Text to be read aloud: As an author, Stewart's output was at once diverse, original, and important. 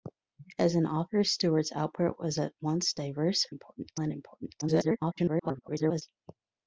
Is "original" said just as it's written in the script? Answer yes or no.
no